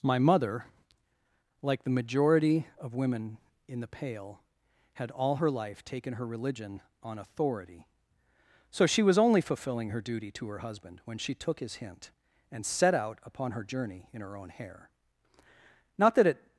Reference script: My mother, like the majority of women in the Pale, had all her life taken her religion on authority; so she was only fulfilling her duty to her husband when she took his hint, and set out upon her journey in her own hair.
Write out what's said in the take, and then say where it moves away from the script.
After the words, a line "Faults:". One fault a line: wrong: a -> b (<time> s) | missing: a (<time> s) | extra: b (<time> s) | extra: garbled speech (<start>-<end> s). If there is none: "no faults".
My mother, like the majority of women in the Pale, had all her life taken her religion on authority; so she was only fulfilling her duty to her husband when she took his hint, and set out upon her journey in her own hair. Not that it
Faults:
extra: Not that it (16.0 s)